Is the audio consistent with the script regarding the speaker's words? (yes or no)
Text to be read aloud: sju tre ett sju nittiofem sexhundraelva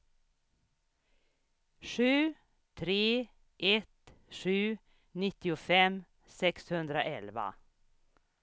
yes